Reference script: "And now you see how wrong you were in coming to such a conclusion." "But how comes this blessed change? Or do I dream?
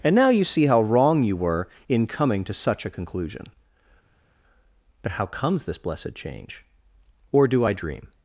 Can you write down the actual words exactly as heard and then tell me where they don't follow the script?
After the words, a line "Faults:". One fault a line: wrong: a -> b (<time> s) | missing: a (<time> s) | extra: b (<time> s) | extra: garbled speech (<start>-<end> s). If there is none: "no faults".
"And now you see how wrong you were in coming to such a conclusion." "But how comes this blessed change? Or do I dream?
Faults:
no faults